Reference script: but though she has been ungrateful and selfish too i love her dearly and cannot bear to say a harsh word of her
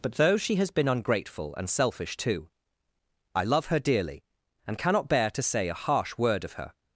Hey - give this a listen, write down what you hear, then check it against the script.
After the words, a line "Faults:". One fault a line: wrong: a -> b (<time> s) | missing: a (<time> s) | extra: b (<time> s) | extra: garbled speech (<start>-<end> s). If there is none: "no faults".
but though she has been ungrateful and selfish too i love her dearly and cannot bear to say a harsh word of her
Faults:
no faults